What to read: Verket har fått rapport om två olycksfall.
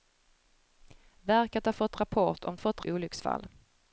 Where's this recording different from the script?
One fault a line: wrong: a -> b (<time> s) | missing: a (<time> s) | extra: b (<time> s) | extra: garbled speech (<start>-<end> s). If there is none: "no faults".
wrong: två -> fått (2.6 s)